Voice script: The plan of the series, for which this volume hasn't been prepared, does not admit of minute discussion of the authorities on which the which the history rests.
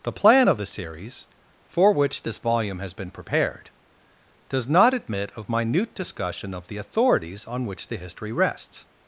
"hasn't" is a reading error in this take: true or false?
true